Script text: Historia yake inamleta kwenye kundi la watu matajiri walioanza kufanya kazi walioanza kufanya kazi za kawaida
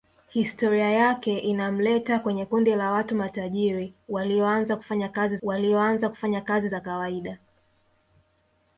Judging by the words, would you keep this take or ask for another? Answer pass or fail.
pass